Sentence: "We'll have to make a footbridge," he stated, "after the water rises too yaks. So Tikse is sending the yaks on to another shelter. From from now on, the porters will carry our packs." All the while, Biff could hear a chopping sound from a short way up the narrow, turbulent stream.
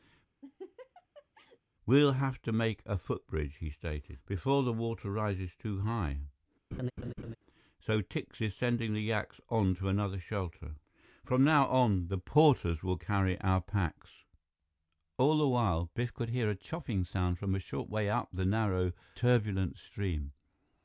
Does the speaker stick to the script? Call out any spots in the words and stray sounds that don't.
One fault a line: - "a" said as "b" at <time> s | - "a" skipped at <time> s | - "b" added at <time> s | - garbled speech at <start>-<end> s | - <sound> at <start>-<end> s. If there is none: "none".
- laugh at 0.4-1.6 s
- "after" said as "before" at 4.2 s
- "yaks" said as "high" at 5.8 s
- laugh at 6.7-7.4 s
- "from" skipped at 11.5 s